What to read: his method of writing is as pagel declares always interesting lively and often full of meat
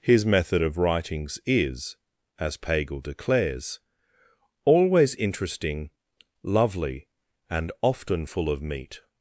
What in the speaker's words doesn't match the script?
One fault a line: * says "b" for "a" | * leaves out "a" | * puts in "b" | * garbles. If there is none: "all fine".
* says "writings" for "writing"
* says "lovely" for "lively"